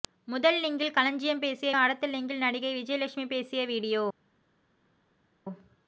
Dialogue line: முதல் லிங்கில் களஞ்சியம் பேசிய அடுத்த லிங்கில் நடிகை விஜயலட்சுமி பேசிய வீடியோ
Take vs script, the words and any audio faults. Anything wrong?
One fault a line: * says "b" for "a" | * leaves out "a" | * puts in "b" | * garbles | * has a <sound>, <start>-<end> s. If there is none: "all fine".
all fine